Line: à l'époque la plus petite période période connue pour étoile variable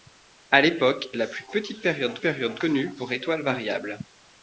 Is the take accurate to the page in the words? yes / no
yes